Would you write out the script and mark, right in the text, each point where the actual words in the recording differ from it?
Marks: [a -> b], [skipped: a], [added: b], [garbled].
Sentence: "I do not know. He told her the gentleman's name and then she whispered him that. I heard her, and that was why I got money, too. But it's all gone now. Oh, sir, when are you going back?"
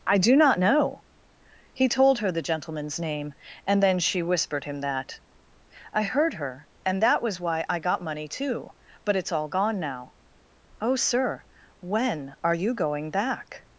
"I do not know. He told her the gentleman's name and then she whispered him that. I heard her, and that was why I got money, too. But it's all gone now. Oh, sir, when are you going back?"